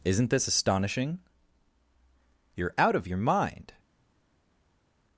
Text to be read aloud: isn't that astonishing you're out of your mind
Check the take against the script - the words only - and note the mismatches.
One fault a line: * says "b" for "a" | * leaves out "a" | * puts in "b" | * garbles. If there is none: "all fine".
* says "this" for "that"